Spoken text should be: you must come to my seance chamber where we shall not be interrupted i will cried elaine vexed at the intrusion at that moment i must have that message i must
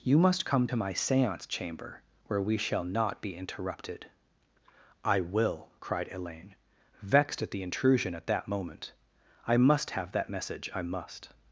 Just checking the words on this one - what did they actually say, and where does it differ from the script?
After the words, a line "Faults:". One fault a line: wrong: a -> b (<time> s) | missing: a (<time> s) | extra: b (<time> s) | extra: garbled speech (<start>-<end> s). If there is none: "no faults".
you must come to my seance chamber where we shall not be interrupted i will cried elaine vexed at the intrusion at that moment i must have that message i must
Faults:
no faults